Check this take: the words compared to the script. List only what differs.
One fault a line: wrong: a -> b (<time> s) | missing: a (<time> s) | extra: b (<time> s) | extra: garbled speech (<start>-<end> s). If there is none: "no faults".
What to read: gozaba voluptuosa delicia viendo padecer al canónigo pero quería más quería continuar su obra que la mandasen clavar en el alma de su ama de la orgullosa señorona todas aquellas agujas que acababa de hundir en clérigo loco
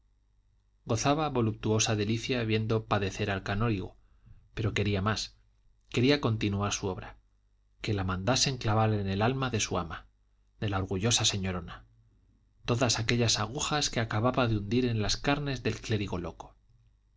extra: las carnes del (15.0 s)